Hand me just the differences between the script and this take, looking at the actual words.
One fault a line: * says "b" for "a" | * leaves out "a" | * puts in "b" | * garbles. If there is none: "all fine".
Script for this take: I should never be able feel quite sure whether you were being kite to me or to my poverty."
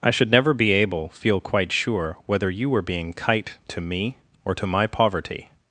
all fine